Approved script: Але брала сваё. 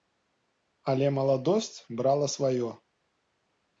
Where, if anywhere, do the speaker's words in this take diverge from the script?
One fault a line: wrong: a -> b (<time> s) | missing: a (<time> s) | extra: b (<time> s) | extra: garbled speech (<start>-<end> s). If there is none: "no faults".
extra: маладосць (1.2 s)